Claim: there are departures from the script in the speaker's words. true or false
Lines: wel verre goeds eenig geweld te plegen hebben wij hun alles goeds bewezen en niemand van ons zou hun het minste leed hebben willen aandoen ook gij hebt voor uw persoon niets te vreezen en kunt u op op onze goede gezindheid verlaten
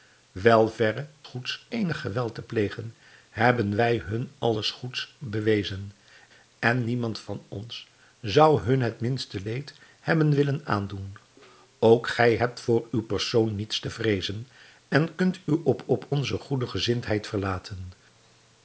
false